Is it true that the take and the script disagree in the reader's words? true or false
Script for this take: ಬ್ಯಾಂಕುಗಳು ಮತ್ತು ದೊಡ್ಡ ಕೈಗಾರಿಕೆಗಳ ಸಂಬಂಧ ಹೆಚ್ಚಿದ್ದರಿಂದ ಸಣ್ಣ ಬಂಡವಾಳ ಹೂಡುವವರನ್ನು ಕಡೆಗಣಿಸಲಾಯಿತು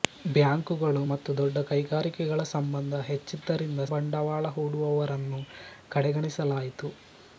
true